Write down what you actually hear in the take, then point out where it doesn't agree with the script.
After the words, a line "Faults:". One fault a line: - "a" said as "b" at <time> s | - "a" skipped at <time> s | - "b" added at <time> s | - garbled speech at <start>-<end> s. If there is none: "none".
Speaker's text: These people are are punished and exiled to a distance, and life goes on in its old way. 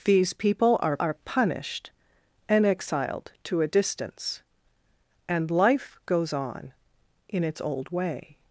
These people are are punished and exiled to a distance, and life goes on in its old way.
Faults:
none